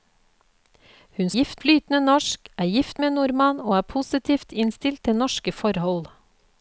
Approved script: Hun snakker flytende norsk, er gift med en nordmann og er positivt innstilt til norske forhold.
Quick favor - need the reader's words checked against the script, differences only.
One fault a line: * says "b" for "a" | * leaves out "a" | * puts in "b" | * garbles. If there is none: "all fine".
* says "gift" for "snakker"